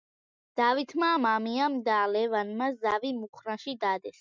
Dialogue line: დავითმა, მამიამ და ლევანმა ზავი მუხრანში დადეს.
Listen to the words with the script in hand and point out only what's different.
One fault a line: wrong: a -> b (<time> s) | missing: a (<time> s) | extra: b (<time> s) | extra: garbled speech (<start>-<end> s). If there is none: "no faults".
no faults